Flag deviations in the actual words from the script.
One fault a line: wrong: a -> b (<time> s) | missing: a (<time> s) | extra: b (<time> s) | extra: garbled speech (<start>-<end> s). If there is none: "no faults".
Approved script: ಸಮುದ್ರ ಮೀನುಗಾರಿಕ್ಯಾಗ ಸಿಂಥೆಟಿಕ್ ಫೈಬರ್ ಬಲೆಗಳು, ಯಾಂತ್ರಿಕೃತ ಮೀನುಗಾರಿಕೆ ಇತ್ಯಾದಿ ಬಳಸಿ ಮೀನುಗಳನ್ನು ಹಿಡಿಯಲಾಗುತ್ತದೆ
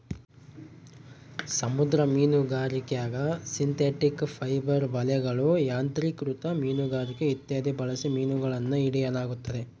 no faults